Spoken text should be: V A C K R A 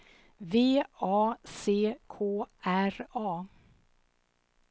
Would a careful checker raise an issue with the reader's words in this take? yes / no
no